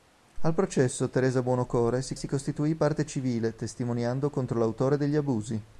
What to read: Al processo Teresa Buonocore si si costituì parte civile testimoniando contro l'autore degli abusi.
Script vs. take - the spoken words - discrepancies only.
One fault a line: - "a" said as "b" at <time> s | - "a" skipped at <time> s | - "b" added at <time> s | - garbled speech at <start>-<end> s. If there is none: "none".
none